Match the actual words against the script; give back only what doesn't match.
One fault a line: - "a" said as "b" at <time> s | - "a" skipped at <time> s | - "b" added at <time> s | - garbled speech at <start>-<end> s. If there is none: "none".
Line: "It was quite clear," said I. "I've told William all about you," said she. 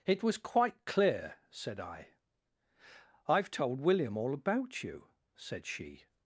none